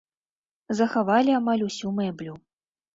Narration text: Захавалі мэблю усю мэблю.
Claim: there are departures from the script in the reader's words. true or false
true